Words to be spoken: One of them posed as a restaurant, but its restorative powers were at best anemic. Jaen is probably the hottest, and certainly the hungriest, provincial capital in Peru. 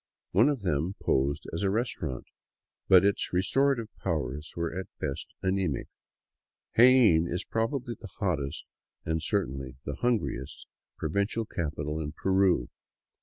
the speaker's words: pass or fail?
pass